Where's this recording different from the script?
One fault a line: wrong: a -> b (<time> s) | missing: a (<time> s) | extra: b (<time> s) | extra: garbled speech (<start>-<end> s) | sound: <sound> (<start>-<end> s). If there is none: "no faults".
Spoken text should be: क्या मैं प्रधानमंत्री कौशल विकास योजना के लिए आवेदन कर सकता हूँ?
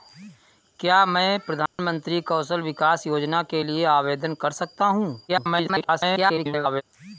sound: dropout (1.7-1.8 s)
extra: garbled speech (5.3-6.8 s)